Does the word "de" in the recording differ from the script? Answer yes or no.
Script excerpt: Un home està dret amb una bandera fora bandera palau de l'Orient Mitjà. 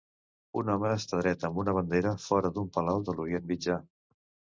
no